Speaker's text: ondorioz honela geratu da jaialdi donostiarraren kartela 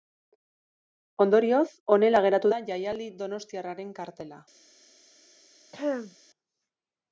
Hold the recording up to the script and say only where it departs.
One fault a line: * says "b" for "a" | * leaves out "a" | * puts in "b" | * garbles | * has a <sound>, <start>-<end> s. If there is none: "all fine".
* has a throat clearing, 5.7-6.2 s